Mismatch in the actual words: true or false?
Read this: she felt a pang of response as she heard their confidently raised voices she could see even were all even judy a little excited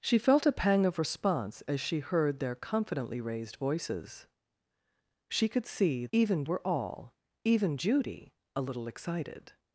false